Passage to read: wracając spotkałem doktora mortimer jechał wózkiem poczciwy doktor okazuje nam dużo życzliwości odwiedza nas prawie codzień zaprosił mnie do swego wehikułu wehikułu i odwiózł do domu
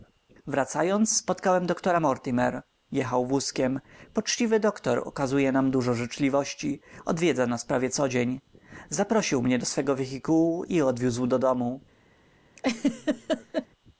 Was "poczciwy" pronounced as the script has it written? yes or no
yes